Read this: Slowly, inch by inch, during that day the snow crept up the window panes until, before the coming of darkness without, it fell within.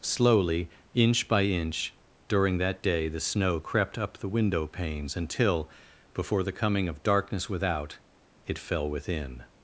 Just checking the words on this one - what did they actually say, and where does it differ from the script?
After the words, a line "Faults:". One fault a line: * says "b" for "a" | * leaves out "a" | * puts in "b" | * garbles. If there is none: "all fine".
Slowly, inch by inch, during that day the snow crept up the window panes until, before the coming of darkness without, it fell within.
Faults:
all fine